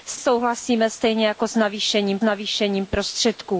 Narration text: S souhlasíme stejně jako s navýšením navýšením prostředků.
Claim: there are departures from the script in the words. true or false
false